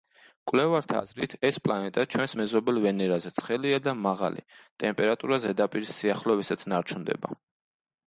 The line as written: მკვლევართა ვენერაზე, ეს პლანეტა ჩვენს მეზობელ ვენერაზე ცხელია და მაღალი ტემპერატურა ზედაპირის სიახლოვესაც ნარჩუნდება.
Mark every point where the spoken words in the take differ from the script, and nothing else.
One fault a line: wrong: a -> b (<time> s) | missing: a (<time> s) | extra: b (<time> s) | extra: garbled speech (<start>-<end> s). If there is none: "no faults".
wrong: ვენერაზე -> აზრით (1.0 s)